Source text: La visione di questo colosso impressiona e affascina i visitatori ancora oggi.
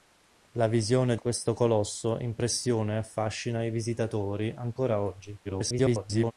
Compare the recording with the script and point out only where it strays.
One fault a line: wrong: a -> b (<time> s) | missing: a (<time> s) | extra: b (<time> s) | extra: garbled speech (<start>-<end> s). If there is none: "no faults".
missing: di (1.1 s)
extra: garbled speech (5.4-6.3 s)